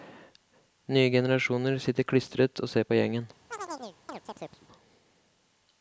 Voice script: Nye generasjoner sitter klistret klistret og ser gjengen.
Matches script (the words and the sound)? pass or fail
fail